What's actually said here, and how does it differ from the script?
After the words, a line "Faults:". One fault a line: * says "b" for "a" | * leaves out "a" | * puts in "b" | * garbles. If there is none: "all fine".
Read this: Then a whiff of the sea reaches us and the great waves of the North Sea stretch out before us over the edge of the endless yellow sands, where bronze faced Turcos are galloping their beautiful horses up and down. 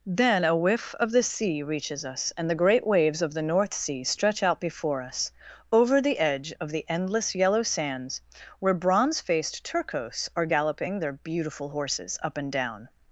Then a whiff of the sea reaches us and the great waves of the North Sea stretch out before us over the edge of the endless yellow sands, where bronze faced Turcos are galloping their beautiful horses up and down.
Faults:
all fine